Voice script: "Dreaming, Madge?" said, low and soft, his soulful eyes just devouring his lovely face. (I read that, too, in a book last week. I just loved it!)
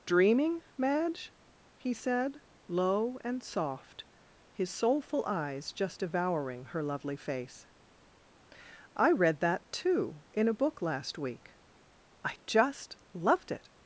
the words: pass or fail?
fail